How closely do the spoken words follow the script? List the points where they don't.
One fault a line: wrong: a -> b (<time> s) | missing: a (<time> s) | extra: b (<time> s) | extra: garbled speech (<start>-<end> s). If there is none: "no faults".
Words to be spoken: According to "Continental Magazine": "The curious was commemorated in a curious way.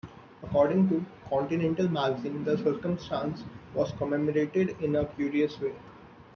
wrong: curious -> circumstance (2.6 s)